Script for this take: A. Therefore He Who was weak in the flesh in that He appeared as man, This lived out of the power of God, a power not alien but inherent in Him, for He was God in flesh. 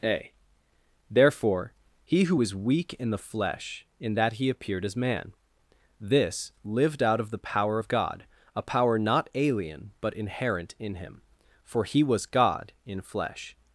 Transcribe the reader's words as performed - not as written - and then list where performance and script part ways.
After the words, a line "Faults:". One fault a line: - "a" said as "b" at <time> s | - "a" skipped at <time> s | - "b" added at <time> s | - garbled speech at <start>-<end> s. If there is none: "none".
A. Therefore He Who was weak in the flesh in that He appeared as man, This lived out of the power of God, a power not alien but inherent in Him, for He was God in flesh.
Faults:
none